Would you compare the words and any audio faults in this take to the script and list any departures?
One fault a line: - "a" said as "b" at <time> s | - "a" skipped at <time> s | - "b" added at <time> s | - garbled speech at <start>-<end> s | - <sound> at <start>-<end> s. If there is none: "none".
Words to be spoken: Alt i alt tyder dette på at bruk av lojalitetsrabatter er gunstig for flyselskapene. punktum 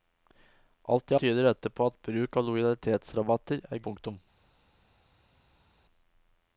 - "alt" skipped at 1.2 s
- "gunstig for flyselskapene" skipped at 3.8 s